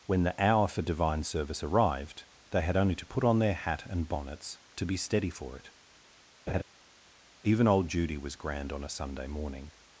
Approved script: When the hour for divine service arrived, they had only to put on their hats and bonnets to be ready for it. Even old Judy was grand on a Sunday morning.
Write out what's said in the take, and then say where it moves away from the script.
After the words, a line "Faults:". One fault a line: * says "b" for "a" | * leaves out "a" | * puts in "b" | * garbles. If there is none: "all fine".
When the hour for divine service arrived, they had only to put on their hat and bonnets to be steady for it. Even old Judy was grand on a Sunday morning.
Faults:
* says "hat" for "hats"
* says "steady" for "ready"